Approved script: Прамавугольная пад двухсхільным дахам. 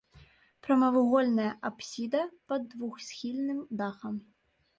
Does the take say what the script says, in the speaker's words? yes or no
no